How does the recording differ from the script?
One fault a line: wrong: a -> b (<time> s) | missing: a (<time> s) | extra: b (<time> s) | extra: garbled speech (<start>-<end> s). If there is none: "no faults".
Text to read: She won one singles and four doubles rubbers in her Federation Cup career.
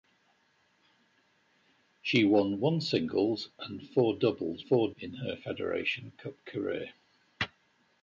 wrong: rubbers -> four (4.6 s)